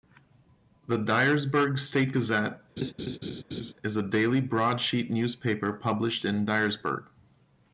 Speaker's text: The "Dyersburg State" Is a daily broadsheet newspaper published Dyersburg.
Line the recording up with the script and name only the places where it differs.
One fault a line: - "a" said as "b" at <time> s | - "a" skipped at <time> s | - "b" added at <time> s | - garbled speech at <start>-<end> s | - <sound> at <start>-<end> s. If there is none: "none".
- "Gazette" added at 2.1 s
- laugh at 2.8-3.7 s
- "in" added at 6.3 s